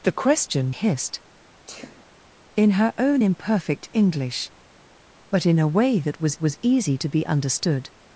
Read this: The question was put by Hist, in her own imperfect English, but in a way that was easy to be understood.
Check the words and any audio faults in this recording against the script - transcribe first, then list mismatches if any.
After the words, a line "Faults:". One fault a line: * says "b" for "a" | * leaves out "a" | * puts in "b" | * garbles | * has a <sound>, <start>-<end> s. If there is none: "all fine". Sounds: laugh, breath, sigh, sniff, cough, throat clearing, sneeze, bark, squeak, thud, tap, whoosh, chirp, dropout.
The question Hist, in her own imperfect English, but in a way that was was easy to be understood.
Faults:
* leaves out "was put by"
* has a sneeze, 1.7-2.1 s
* puts in "was"